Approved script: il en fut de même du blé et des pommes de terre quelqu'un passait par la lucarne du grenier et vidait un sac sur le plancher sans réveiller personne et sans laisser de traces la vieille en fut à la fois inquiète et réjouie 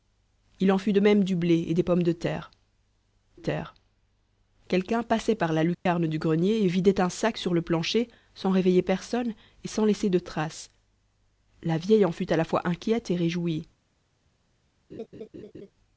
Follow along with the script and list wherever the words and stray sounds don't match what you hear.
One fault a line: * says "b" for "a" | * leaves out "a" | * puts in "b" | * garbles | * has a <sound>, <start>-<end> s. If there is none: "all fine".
* puts in "terre"
* has a dropout, 5.7-5.9 s
* has a laugh, 14.9-15.7 s